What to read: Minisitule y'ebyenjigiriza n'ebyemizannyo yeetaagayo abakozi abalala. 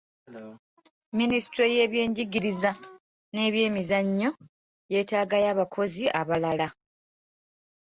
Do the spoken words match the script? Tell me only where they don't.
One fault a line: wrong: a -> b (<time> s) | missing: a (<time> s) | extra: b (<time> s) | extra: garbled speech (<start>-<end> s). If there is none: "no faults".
no faults